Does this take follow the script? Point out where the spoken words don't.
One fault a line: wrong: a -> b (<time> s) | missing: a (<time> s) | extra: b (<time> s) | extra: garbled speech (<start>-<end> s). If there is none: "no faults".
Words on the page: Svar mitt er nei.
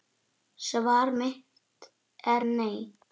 no faults